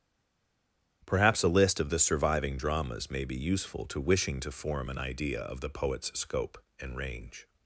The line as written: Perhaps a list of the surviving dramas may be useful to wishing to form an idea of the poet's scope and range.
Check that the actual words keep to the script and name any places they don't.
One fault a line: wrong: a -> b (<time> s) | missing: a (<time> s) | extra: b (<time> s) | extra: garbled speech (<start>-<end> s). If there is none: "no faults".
no faults